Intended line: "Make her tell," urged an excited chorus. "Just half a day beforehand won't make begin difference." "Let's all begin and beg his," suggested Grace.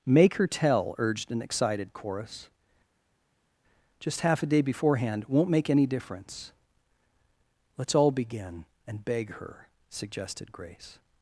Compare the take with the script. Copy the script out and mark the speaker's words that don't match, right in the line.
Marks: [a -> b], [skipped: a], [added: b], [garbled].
"Make her tell," urged an excited chorus. "Just half a day beforehand won't make [begin -> any] difference." "Let's all begin and beg [his," -> her] suggested Grace.